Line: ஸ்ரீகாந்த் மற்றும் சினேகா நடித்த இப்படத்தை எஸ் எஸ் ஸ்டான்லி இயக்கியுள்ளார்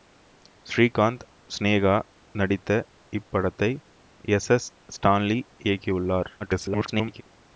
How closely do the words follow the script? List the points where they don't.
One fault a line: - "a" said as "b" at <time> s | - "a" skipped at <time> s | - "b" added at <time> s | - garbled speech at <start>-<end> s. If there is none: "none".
- "மற்றும்" skipped at 1.2 s
- garbled speech at 6.4-7.2 s